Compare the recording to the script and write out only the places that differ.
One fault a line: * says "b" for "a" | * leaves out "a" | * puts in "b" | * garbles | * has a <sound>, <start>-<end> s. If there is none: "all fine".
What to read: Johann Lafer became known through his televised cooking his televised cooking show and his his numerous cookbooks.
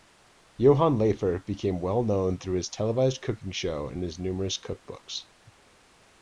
* puts in "well"
* leaves out "his televised cooking"
* leaves out "his"